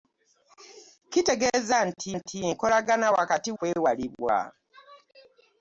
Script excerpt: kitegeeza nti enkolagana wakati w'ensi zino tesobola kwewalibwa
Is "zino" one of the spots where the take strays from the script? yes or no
yes